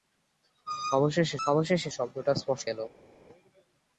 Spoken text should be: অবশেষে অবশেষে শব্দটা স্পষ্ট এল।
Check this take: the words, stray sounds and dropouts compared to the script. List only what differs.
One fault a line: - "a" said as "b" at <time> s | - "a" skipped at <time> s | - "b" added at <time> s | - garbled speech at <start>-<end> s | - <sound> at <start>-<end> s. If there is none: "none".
none